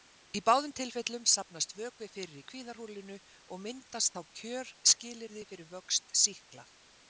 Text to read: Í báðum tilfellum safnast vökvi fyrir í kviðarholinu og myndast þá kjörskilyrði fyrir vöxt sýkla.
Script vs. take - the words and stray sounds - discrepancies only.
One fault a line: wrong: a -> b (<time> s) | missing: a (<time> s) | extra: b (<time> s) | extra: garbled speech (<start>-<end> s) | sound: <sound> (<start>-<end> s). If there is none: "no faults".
no faults